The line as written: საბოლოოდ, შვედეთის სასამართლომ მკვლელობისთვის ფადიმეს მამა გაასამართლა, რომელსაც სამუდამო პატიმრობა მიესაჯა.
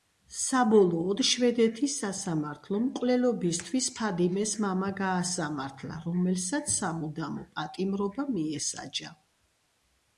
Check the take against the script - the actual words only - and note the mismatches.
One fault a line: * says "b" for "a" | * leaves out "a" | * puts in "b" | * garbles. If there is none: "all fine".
all fine